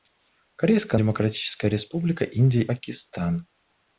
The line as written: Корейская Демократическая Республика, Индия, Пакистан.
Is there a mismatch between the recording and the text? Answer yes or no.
no